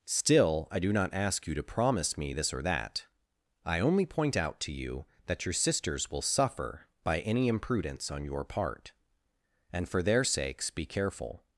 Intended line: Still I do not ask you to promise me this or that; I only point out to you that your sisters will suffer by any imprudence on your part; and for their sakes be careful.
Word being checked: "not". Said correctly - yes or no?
yes